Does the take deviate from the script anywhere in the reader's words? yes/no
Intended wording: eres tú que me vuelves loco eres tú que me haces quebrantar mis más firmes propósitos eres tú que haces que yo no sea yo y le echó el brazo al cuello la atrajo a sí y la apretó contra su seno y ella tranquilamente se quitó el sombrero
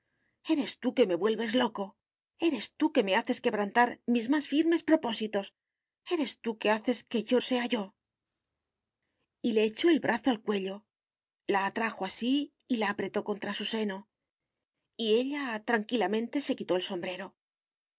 yes